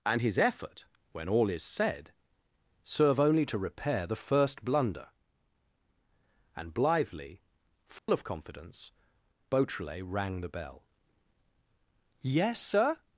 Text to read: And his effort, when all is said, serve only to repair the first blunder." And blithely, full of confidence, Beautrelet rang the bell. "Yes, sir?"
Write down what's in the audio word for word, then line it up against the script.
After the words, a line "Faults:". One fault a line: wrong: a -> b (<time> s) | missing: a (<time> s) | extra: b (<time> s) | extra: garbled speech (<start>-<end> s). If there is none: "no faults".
And his effort, when all is said, serve only to repair the first blunder." And blithely, full of confidence, Beautrelet rang the bell. "Yes, sir?"
Faults:
no faults